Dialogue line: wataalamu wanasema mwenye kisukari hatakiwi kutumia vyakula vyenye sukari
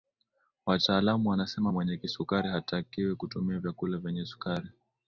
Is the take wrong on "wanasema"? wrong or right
right